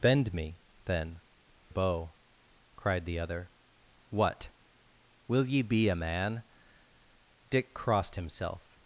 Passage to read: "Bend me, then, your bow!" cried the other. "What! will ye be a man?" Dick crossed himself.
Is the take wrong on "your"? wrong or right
wrong